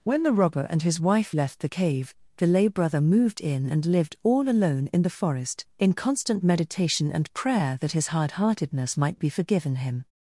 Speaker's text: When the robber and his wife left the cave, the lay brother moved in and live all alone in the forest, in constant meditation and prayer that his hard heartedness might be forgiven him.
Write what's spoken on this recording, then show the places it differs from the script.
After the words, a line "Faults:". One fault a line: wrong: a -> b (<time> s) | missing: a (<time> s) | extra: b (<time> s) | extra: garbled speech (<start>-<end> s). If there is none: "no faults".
When the robber and his wife left the cave, the lay brother moved in and lived all alone in the forest, in constant meditation and prayer that his hard heartedness might be forgiven him.
Faults:
wrong: live -> lived (3.9 s)